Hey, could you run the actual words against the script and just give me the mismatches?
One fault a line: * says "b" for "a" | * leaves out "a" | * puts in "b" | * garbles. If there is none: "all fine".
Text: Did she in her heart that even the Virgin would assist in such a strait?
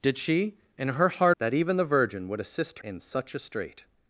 all fine